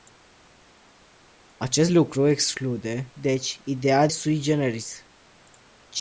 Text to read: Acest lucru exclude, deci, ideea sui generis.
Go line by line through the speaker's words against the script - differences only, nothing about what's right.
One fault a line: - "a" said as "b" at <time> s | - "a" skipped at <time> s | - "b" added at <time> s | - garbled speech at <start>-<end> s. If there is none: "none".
none